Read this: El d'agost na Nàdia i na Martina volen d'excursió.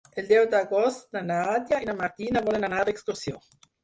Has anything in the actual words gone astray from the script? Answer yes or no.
yes